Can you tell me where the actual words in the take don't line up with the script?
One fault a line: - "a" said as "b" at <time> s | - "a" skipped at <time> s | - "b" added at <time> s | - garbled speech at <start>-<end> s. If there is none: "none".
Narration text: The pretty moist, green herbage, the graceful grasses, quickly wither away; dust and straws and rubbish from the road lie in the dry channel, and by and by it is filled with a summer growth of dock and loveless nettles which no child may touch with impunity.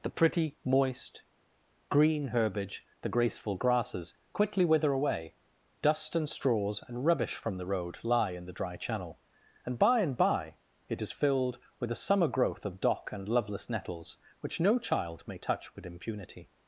none